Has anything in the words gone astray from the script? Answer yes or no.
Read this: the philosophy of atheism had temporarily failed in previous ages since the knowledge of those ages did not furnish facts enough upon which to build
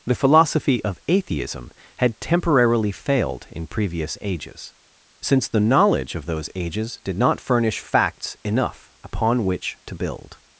no